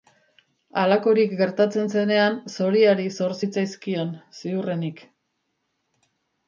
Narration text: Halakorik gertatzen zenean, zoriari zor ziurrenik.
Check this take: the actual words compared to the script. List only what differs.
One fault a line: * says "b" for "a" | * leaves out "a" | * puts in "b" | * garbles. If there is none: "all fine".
* puts in "zitzaizkion"